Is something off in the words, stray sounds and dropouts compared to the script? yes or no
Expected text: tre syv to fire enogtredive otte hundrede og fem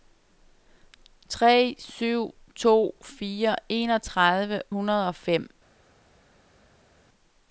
yes